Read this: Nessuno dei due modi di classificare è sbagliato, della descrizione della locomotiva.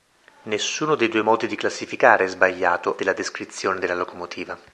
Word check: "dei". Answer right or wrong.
right